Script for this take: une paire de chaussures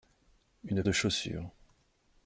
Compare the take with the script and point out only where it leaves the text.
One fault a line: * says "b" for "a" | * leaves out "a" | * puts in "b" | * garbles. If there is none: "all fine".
* leaves out "paire"